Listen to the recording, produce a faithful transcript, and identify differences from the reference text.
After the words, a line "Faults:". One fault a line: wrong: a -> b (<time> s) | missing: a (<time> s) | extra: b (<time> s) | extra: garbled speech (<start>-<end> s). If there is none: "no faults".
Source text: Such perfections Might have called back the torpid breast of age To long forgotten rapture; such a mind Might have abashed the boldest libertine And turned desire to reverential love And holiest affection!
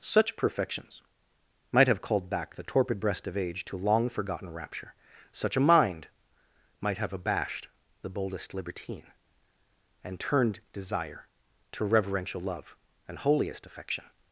Such perfections Might have called back the torpid breast of age To long forgotten rapture; such a mind Might have abashed the boldest libertine And turned desire to reverential love And holiest affection!
Faults:
no faults